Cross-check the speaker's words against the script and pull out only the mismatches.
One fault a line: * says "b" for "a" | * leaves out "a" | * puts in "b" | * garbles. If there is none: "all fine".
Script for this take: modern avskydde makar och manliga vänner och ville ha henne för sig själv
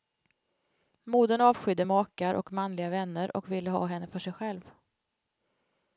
all fine